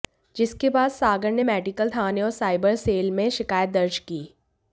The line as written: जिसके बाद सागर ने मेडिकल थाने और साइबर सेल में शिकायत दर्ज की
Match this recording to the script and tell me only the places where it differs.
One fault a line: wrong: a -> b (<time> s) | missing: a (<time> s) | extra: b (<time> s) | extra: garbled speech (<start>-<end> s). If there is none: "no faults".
no faults